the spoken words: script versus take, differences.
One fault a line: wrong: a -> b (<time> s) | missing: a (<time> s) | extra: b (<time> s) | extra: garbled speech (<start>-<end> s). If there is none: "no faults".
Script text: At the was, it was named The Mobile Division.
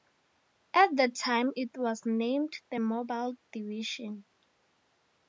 wrong: was -> time (1.1 s)